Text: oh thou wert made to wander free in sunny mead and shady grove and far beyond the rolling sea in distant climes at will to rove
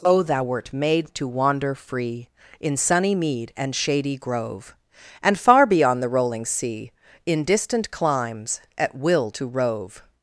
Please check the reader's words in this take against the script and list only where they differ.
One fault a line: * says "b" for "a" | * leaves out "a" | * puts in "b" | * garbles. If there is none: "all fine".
all fine